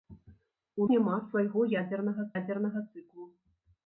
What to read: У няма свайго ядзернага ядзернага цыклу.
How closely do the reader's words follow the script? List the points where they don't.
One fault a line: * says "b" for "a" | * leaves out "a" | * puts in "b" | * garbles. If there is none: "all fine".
all fine